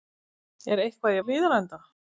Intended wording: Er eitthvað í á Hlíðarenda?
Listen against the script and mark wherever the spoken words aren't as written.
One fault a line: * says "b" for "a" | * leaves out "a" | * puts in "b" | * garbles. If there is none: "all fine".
all fine